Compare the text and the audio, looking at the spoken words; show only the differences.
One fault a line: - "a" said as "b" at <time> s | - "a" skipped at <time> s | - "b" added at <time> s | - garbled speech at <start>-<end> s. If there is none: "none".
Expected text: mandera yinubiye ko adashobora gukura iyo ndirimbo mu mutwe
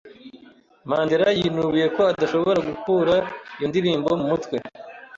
none